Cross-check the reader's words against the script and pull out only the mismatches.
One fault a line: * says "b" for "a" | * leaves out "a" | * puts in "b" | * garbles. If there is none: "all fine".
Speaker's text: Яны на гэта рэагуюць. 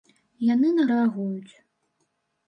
* leaves out "гэта"